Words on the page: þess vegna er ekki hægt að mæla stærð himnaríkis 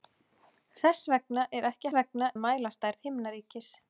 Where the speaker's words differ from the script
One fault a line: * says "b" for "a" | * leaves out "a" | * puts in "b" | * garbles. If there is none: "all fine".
* says "vegna" for "hægt"